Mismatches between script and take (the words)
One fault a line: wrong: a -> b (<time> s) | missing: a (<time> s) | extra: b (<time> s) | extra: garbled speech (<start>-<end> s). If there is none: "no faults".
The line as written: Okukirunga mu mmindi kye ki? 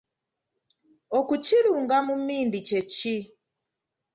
no faults